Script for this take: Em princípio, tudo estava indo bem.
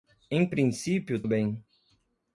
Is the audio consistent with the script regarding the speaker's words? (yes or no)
no